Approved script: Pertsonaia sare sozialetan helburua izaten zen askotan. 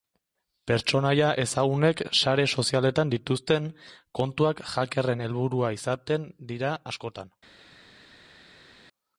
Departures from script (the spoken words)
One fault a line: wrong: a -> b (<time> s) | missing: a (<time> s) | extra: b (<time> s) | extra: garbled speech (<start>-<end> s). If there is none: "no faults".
extra: ezagunek (1.4 s)
extra: dituzten kontuak hackerren (3.1 s)
wrong: zen -> dira (6.5 s)